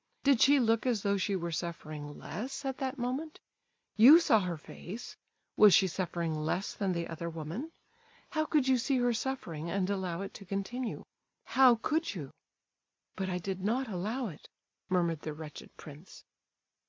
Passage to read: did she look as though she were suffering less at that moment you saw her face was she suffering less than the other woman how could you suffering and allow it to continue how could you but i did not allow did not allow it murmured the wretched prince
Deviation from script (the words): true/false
true